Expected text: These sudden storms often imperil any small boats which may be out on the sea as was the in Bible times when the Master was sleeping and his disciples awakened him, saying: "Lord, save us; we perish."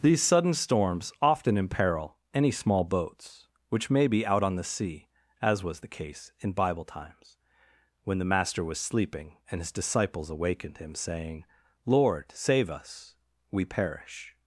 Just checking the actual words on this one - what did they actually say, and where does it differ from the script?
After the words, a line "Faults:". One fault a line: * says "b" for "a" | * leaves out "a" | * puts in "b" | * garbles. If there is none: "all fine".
These sudden storms often imperil any small boats which may be out on the sea as was the case in Bible times when the Master was sleeping and his disciples awakened him, saying: "Lord, save us; we perish."
Faults:
* puts in "case"